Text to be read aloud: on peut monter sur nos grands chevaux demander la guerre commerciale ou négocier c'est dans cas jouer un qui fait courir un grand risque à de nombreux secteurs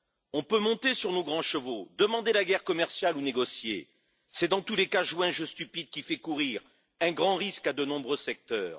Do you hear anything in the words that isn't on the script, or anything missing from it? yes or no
yes